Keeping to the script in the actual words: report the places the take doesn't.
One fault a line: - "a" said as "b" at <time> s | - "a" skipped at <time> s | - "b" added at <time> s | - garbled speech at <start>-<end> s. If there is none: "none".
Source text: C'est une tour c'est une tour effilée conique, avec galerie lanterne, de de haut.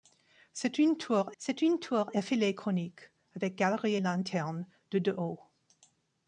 none